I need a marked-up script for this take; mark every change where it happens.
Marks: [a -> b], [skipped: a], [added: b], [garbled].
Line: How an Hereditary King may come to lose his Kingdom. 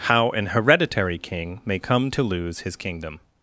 How an Hereditary King may come to lose his Kingdom.